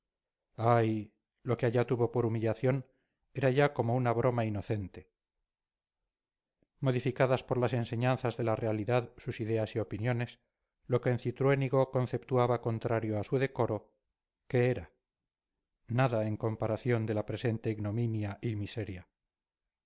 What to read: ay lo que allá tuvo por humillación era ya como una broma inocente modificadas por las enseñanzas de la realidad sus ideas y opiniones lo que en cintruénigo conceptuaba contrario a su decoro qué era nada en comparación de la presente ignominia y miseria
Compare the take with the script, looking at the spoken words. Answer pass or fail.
pass